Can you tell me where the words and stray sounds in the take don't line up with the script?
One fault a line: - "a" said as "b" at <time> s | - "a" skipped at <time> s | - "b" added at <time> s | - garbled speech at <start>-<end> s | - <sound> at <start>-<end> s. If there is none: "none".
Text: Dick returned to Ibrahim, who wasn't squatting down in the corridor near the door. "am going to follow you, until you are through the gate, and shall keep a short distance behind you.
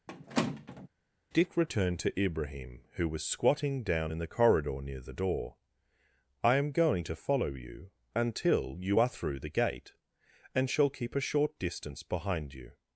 - squeak at 0.1-0.9 s
- "wasn't" said as "was" at 3.1 s
- "I" added at 6.4 s